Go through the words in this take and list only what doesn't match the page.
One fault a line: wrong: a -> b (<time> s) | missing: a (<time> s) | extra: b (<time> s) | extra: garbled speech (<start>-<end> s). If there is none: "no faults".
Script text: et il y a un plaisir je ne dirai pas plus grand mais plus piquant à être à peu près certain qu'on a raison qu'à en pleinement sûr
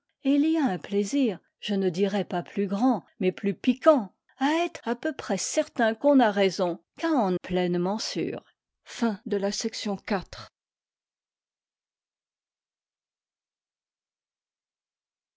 no faults